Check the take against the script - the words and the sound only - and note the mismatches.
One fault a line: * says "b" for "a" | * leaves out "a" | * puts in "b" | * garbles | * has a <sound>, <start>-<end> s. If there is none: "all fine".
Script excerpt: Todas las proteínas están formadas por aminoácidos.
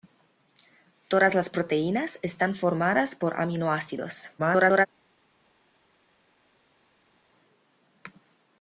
* garbles